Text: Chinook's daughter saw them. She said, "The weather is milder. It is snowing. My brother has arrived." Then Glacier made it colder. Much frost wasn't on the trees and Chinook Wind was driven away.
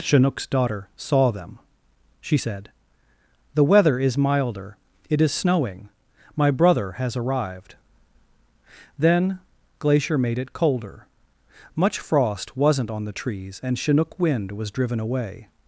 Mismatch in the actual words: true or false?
false